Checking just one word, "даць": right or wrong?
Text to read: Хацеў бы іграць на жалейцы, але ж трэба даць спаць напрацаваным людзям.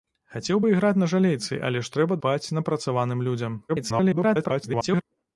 wrong